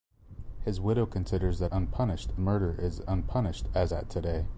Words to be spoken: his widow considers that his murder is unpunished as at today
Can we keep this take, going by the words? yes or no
no